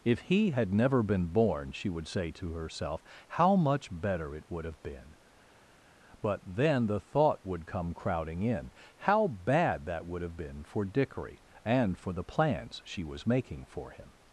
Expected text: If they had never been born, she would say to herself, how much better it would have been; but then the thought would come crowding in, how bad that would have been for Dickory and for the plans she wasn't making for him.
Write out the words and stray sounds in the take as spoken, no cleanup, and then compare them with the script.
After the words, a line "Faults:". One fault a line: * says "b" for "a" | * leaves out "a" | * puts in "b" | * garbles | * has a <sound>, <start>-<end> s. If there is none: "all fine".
If he had never been born, she would say to herself, how much better it would have been; but then the thought would come crowding in, how bad that would have been for Dickory and for the plans she was making for him.
Faults:
* says "he" for "they"
* says "was" for "wasn't"